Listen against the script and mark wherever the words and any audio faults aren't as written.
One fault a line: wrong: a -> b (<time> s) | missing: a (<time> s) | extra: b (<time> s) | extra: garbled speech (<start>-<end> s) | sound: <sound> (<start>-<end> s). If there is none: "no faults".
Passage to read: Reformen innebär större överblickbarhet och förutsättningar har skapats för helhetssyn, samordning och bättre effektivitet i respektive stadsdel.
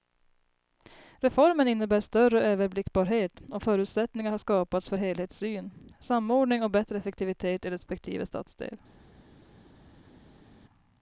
no faults